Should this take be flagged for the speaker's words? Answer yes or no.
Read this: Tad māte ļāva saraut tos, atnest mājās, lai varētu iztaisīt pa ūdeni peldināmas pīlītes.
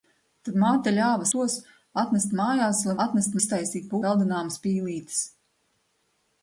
yes